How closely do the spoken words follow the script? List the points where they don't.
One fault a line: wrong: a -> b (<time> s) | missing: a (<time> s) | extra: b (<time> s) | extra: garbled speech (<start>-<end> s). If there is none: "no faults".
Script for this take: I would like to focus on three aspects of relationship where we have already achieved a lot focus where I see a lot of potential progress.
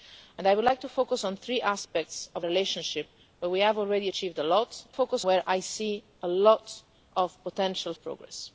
no faults